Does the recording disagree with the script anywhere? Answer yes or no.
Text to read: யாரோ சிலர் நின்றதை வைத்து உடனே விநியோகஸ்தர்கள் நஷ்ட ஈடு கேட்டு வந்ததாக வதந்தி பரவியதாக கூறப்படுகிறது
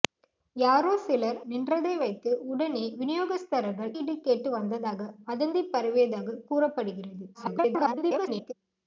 yes